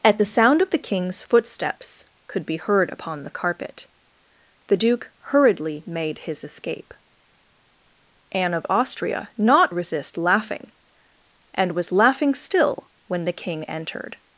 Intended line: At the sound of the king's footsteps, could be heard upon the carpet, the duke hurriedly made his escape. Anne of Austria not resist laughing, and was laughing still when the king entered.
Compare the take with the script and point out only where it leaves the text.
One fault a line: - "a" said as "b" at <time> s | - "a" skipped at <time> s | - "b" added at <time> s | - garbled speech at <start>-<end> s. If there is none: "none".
none